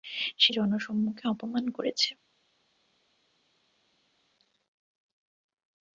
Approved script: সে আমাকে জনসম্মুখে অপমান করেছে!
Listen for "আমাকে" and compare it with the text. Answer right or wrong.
wrong